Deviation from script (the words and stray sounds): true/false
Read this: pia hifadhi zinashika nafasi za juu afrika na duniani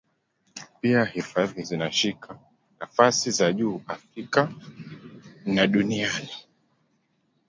false